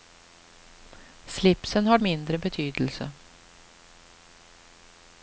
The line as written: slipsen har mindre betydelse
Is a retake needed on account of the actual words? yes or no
no